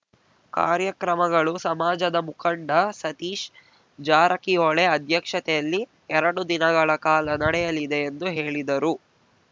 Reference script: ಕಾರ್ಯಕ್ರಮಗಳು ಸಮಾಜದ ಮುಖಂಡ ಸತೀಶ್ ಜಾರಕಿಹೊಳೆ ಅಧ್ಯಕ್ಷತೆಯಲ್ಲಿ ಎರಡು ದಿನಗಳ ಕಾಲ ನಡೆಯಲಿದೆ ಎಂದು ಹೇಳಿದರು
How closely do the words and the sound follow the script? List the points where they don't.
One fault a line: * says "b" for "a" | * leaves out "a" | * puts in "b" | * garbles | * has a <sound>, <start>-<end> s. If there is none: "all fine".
all fine